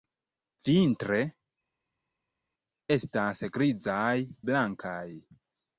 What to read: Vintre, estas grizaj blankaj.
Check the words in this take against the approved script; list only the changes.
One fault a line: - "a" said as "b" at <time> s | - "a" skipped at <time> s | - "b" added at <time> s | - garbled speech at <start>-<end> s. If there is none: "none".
none